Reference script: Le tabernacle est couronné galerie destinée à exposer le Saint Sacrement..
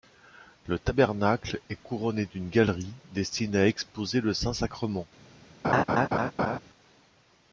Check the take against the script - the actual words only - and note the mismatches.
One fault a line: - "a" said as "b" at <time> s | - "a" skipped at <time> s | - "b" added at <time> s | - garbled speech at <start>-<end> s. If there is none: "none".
- "d'une" added at 2.2 s